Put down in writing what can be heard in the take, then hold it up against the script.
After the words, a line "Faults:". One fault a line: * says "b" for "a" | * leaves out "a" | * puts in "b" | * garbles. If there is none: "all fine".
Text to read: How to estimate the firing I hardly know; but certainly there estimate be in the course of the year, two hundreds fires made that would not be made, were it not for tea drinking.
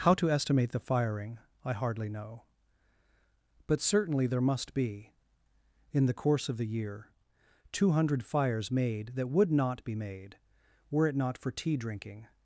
How to estimate the firing I hardly know; but certainly there must be in the course of the year, two hundred fires made that would not be made, were it not for tea drinking.
Faults:
* says "must" for "estimate"
* says "hundred" for "hundreds"